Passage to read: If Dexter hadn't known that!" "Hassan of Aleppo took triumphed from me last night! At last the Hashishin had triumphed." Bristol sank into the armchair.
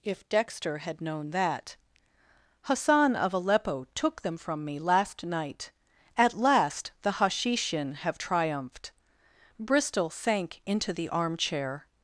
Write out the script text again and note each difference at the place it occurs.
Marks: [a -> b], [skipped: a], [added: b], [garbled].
If Dexter [hadn't -> had] known that!" "Hassan of Aleppo took [triumphed -> them] from me last night! At last the Hashishin [had -> have] triumphed." Bristol sank into the armchair.